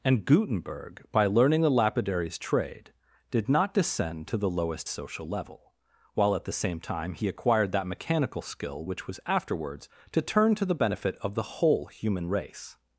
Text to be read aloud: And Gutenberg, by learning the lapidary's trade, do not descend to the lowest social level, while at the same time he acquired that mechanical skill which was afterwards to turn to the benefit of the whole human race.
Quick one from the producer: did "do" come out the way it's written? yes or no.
no